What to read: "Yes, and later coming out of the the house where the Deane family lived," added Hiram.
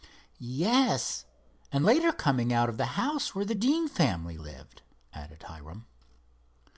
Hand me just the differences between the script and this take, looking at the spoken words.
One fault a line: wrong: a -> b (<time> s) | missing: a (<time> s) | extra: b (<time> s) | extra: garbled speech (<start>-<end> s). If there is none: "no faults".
missing: the (2.9 s)